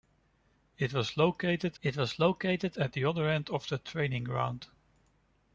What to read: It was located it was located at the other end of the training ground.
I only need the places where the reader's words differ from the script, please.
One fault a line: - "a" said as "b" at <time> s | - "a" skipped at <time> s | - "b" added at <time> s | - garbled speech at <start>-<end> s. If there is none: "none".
none